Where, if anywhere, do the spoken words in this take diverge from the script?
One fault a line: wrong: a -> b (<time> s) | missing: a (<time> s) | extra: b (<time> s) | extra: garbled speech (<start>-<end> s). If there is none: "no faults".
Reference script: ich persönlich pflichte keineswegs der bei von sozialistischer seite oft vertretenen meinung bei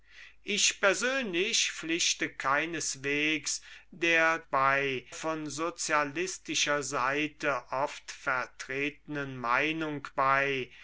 no faults